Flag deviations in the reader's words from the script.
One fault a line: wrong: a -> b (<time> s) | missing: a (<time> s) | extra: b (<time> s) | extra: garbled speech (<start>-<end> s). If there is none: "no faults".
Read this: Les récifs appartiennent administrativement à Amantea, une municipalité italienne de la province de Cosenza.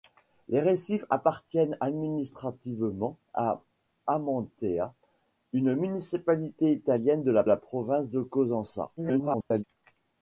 extra: la (7.4 s)
extra: garbled speech (9.0-9.6 s)